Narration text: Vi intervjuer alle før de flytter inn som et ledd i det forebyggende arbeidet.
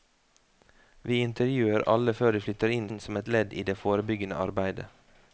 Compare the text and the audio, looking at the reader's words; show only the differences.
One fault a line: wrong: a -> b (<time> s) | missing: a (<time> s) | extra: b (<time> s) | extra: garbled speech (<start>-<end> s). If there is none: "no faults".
extra: inn (2.9 s)